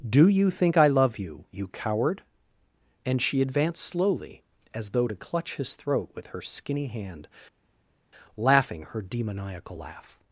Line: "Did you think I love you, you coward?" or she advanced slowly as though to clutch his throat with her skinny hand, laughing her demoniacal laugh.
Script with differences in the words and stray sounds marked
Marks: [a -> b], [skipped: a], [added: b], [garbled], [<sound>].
["Did -> Do] you think I love you, you coward?" [or -> and] she advanced slowly as though to clutch his throat with her skinny hand, laughing her demoniacal laugh.